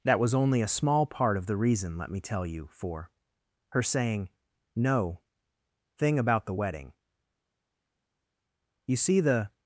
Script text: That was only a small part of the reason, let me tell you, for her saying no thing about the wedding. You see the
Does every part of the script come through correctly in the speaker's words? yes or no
yes